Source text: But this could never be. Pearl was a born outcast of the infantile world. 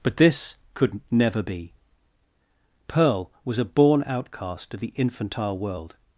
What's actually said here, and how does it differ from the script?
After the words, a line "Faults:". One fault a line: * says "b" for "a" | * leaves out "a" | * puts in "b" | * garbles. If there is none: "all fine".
But this could never be. Pearl was a born outcast of the infantile world.
Faults:
all fine